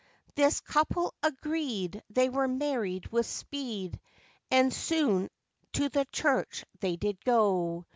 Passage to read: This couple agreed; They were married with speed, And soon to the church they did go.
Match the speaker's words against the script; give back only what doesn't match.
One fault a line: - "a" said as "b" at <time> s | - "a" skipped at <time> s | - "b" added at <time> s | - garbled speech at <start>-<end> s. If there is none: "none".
none